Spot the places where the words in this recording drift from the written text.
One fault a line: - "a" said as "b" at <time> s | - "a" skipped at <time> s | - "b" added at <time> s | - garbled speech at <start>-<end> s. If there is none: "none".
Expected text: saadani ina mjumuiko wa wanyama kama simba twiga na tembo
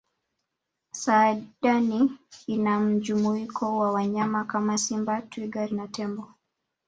none